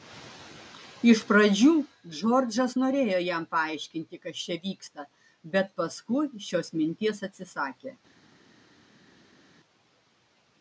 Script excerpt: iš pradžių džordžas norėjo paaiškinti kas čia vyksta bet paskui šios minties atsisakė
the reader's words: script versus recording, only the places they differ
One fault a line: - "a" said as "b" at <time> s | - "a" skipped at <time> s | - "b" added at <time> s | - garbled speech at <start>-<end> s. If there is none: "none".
- "jam" added at 3.2 s